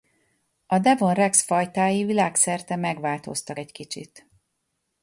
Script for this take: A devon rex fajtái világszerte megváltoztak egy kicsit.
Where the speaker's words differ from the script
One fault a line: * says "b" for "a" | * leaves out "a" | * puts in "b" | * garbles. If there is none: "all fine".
all fine